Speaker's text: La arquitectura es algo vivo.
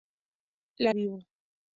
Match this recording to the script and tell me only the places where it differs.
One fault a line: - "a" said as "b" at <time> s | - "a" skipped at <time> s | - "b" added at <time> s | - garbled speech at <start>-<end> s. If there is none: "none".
- "arquitectura es algo" skipped at 0.9 s